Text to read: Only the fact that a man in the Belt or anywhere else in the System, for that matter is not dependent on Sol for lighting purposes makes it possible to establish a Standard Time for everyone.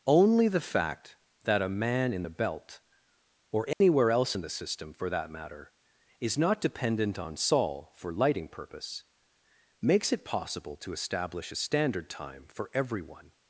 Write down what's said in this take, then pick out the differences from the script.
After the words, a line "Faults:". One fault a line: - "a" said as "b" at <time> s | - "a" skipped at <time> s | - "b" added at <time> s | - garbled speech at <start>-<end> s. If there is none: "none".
Only the fact that a man in the Belt or anywhere else in the System, for that matter is not dependent on Sol for lighting purpose makes it possible to establish a Standard Time for everyone.
Faults:
- "purposes" said as "purpose" at 8.5 s